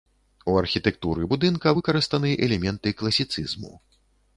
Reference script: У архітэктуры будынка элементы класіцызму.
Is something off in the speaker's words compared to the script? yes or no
yes